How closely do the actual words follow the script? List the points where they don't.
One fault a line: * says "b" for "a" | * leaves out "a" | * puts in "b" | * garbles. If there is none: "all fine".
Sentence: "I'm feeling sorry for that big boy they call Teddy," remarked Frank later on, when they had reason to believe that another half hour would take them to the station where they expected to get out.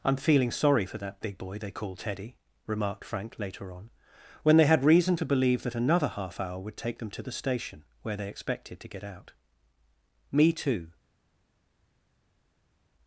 * puts in "Me too"